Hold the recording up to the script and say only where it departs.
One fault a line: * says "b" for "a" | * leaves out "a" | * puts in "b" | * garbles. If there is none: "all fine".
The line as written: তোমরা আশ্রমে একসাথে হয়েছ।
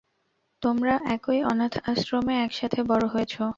* puts in "একই অনাথ"
* puts in "বড়"